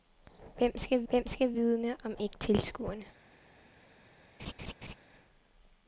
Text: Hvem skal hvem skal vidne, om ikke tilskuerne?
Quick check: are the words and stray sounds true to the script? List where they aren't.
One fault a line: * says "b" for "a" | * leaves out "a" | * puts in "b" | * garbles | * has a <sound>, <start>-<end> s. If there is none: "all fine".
* has a laugh, 4.4-5.0 s